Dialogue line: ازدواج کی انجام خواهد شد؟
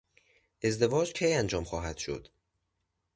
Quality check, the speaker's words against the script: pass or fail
pass